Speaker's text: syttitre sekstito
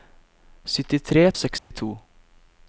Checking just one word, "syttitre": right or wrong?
right